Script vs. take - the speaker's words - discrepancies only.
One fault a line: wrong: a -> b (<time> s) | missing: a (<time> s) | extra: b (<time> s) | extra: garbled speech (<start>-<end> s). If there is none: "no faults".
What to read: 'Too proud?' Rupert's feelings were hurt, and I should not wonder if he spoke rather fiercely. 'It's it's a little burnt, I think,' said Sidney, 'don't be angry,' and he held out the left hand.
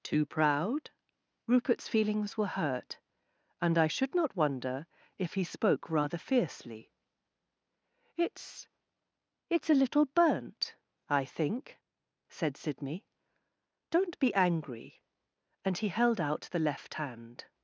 no faults